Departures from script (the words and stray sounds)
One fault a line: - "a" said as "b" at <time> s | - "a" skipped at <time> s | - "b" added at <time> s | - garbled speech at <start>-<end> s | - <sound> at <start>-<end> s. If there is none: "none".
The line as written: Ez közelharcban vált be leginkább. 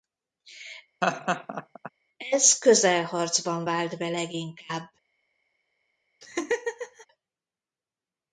- laugh at 1.0-1.9 s
- laugh at 6.2-7.1 s